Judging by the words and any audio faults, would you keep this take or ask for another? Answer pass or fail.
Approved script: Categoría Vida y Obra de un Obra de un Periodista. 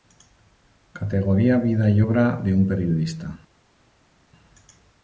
fail